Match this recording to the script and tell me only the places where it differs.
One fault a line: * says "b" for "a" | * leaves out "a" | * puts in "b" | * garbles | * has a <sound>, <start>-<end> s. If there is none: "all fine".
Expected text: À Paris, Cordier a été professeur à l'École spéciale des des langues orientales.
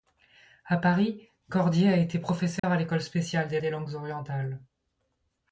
* has a dropout, 2.6-2.6 s